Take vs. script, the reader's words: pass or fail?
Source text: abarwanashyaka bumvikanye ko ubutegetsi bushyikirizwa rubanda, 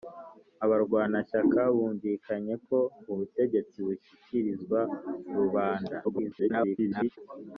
fail